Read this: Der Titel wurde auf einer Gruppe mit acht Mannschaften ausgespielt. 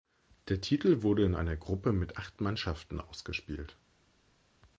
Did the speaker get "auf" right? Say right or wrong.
wrong